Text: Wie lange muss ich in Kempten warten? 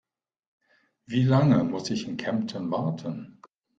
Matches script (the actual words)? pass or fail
pass